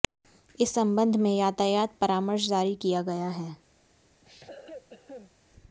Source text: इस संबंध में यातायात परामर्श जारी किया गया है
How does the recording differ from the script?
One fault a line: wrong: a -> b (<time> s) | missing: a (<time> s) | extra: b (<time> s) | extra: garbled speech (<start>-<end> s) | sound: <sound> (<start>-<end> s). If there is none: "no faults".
sound: cough (4.2-5.3 s)